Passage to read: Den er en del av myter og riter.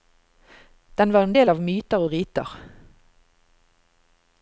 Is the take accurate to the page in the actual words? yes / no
no